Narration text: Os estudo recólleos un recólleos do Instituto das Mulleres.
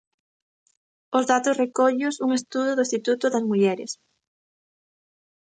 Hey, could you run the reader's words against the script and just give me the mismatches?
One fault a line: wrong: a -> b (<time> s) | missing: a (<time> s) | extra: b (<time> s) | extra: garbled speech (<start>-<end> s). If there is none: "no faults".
wrong: estudo -> datos (1.3 s)
wrong: recólleos -> estudo (2.4 s)